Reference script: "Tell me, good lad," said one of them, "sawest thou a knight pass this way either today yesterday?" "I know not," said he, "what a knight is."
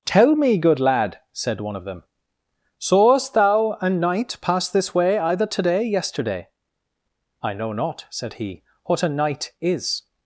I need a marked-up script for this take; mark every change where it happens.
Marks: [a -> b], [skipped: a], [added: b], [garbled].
"Tell me, good lad," said one of them, "sawest thou a knight pass this way either today yesterday?" "I know not," said he, "what a knight is."